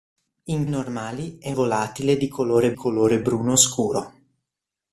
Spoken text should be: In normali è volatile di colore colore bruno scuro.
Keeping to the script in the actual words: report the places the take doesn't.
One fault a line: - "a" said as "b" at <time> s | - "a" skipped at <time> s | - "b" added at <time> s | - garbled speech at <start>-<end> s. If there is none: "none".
none